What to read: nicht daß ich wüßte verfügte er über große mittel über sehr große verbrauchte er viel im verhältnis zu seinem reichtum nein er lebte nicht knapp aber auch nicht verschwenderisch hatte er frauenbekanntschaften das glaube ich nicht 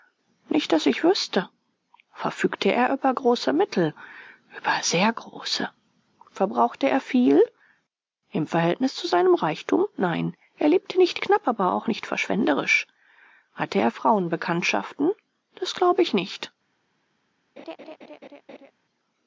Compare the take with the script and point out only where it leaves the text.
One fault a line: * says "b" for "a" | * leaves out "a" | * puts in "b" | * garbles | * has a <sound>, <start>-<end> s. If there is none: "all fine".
* has a laugh, 17.6-18.7 s